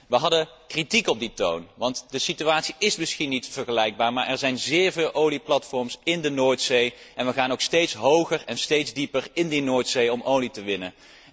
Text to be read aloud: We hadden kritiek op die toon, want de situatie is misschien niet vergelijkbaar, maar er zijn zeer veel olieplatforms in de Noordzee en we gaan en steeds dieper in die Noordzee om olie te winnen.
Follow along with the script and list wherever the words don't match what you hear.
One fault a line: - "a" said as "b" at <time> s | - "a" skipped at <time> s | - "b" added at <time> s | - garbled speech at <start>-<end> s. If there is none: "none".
- "ook steeds hoger" added at 7.5 s